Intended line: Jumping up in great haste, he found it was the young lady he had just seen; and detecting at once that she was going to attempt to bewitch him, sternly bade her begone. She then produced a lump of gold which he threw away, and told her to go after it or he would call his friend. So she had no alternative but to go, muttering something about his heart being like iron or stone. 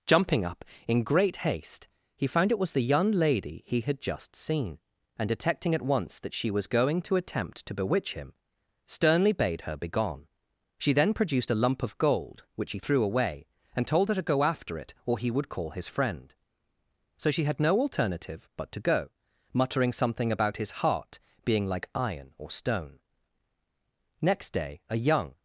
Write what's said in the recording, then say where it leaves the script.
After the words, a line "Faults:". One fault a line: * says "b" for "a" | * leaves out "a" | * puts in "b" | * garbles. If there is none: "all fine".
Jumping up in great haste, he found it was the young lady he had just seen; and detecting at once that she was going to attempt to bewitch him, sternly bade her begone. She then produced a lump of gold which he threw away, and told her to go after it or he would call his friend. So she had no alternative but to go, muttering something about his heart being like iron or stone. Next day, a young
Faults:
* puts in "Next day a young"